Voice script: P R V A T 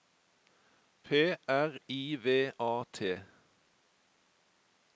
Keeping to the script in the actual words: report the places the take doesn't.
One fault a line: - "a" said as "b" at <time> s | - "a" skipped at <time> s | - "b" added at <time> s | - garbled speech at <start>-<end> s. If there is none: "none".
- "I" added at 1.9 s